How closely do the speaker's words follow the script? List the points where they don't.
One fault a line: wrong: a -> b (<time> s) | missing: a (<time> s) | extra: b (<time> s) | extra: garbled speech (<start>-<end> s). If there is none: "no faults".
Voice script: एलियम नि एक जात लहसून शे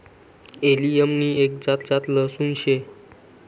extra: जात (1.8 s)